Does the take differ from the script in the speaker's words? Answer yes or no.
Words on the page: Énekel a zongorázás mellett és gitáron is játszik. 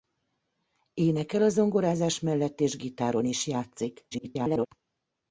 yes